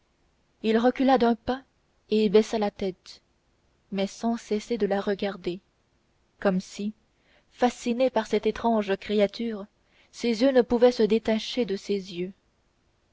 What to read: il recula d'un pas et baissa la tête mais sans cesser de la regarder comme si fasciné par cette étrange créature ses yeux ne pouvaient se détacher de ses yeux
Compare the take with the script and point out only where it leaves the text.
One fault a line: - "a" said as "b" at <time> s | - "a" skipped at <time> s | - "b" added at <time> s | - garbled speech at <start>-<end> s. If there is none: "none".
none